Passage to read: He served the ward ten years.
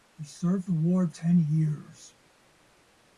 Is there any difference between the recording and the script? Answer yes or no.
no